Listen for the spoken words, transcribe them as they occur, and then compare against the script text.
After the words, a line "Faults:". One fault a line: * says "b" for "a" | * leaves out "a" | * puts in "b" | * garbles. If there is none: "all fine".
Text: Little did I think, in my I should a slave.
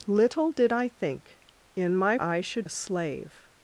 Little did I think, in my I should a slave.
Faults:
all fine